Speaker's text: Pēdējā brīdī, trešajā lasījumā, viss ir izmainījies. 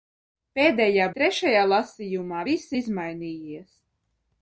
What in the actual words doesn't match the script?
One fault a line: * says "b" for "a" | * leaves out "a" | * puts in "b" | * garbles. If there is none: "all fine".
* leaves out "brīdī"
* leaves out "ir"